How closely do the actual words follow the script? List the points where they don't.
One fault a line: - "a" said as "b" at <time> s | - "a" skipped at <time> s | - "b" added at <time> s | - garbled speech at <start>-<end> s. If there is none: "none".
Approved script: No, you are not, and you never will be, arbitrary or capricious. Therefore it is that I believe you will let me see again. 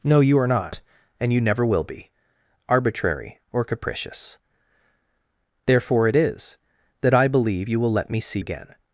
none